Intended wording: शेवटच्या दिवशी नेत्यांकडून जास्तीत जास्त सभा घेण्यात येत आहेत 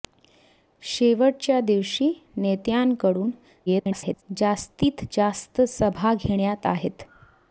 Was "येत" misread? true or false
true